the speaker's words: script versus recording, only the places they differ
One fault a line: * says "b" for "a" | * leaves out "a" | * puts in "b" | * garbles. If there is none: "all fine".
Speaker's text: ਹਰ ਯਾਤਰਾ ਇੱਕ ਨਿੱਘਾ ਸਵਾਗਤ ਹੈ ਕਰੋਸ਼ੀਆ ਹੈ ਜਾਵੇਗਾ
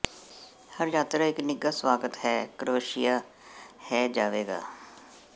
all fine